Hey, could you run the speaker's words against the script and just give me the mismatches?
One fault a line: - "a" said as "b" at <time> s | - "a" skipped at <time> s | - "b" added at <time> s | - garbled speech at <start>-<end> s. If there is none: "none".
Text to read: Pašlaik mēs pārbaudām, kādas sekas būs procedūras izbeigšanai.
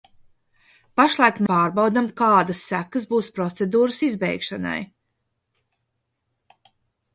- "mēs" skipped at 1.4 s